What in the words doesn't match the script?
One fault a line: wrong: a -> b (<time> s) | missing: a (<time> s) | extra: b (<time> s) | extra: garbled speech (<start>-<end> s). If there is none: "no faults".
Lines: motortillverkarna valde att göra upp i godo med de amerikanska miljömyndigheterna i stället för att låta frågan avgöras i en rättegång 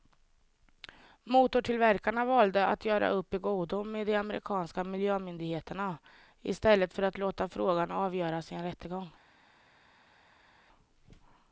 no faults